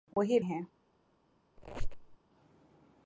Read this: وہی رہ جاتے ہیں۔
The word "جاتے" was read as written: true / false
false